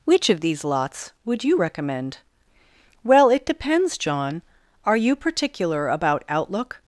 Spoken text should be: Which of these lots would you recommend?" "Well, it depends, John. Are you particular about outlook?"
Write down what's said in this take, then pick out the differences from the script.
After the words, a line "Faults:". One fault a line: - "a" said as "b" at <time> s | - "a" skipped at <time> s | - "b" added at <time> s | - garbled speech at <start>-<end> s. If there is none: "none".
Which of these lots would you recommend?" "Well, it depends, John. Are you particular about outlook?"
Faults:
none